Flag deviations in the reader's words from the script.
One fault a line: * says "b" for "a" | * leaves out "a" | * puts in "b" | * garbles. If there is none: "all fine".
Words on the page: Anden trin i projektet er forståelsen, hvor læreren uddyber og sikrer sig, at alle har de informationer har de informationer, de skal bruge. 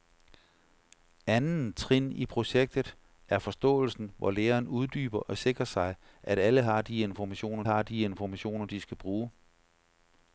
all fine